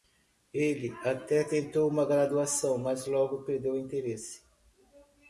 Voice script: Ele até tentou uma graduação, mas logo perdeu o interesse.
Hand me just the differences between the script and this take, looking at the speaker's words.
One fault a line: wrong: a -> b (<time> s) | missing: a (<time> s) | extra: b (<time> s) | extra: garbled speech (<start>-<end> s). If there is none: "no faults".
no faults